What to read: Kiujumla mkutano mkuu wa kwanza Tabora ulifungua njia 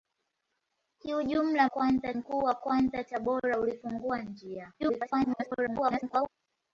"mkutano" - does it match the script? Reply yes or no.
no